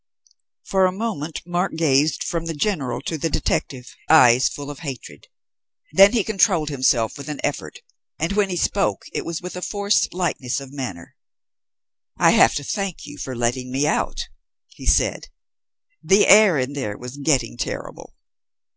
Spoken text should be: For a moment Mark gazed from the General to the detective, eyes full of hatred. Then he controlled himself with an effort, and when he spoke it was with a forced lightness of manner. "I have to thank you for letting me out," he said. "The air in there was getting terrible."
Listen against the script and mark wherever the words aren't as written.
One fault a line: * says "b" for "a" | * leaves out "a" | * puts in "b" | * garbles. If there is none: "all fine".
all fine